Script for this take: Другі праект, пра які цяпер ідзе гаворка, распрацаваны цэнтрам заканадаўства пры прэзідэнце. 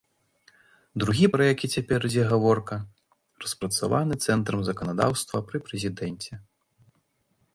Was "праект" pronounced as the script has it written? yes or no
no